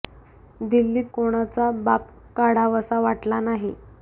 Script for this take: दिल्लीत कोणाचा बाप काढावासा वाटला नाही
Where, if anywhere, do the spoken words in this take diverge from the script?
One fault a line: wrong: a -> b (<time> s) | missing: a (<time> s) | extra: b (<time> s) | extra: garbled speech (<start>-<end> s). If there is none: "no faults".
no faults